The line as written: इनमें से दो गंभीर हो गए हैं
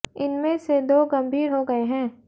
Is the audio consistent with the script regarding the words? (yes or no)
yes